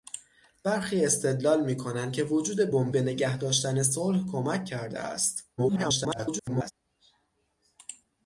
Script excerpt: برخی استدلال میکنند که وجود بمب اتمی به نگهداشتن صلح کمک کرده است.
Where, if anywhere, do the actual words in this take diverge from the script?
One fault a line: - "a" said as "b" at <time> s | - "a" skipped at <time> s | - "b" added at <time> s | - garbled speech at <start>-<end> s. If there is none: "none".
- "اتمی" skipped at 2.9 s
- garbled speech at 5.6-6.7 s